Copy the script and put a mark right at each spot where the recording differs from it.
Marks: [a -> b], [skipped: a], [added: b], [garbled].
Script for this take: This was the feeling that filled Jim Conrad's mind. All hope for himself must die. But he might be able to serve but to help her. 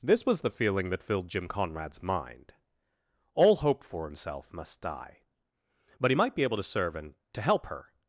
This was the feeling that filled Jim Conrad's mind. All hope for himself must die. But he might be able to serve [but -> and] to help her.